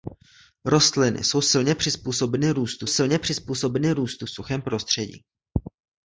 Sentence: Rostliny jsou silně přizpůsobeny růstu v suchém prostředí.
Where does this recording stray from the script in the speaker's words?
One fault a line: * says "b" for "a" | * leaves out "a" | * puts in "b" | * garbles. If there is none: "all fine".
* puts in "silně přizpůsobeny růstu"